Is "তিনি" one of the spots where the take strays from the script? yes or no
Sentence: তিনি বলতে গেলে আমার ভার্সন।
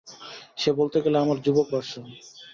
yes